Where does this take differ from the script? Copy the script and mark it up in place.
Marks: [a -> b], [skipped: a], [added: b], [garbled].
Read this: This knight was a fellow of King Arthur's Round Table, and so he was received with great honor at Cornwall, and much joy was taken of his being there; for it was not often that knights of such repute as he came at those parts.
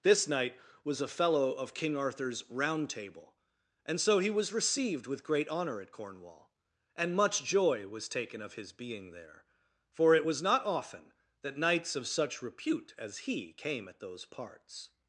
This knight was a fellow of King Arthur's Round Table, and so he was received with great honor at Cornwall, and much joy was taken of his being there; for it was not often that knights of such repute as he came at those parts.